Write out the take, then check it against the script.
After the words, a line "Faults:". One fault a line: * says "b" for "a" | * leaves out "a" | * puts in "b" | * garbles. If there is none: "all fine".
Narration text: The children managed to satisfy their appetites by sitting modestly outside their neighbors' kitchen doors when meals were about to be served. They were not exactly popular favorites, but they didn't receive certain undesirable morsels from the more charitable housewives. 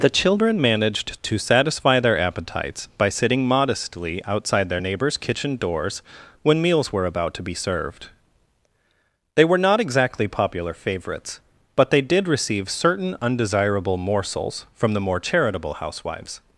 The children managed to satisfy their appetites by sitting modestly outside their neighbors' kitchen doors when meals were about to be served. They were not exactly popular favorites, but they did receive certain undesirable morsels from the more charitable housewives.
Faults:
* says "did" for "didn't"